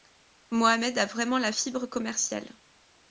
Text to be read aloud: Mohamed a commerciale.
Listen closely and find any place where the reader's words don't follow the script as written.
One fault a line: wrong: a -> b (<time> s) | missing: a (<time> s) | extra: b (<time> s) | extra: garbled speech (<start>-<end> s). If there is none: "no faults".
extra: vraiment la fibre (1.1 s)